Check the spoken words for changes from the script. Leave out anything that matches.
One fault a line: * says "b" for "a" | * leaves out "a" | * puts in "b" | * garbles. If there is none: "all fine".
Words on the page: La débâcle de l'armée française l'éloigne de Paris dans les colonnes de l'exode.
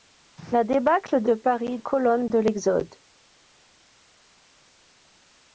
* leaves out "l'armée française l'éloigne"
* leaves out "dans les"